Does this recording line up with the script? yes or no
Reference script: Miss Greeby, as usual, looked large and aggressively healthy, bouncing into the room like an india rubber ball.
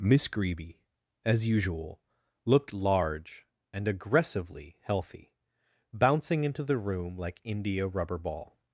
no